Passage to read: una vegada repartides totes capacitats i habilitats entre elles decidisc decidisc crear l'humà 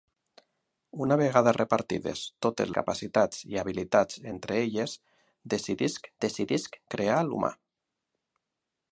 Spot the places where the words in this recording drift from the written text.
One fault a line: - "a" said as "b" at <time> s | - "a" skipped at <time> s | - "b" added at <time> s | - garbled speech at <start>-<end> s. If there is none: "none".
none